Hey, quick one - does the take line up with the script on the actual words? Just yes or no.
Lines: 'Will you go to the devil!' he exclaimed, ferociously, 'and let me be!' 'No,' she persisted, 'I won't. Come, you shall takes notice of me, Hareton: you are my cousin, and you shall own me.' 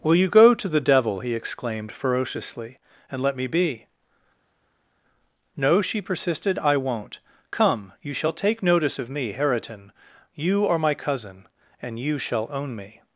no